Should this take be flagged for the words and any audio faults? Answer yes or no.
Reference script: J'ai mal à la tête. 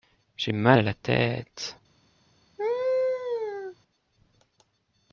yes